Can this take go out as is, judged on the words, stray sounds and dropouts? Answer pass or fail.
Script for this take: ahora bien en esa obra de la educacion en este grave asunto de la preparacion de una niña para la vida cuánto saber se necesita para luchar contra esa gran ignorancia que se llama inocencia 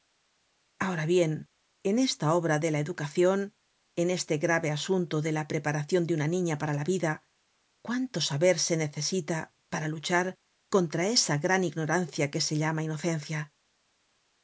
fail